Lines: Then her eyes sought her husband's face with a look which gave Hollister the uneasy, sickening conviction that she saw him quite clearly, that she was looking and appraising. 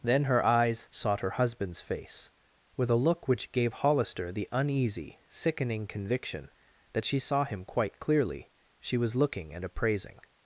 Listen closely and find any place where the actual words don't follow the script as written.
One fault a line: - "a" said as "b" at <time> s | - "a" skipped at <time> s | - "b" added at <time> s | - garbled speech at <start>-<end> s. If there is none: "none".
- "that" skipped at 8.5 s